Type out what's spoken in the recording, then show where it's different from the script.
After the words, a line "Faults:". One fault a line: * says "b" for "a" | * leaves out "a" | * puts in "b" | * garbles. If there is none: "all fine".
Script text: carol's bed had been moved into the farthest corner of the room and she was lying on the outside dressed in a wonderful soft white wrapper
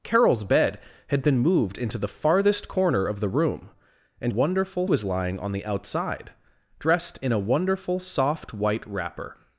carol's bed had been moved into the farthest corner of the room and wonderful was lying on the outside dressed in a wonderful soft white wrapper
Faults:
* says "wonderful" for "she"